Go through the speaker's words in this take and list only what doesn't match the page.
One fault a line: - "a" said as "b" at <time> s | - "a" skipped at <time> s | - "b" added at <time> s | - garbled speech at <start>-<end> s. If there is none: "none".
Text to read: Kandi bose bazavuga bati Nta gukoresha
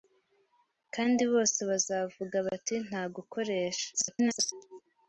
- garbled speech at 3.9-4.5 s